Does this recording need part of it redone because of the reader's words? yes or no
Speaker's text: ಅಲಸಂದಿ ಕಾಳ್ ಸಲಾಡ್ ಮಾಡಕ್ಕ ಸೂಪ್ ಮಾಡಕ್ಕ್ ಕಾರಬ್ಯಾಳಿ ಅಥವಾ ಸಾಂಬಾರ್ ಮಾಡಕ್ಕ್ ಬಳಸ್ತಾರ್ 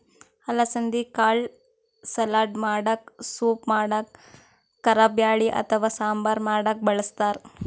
no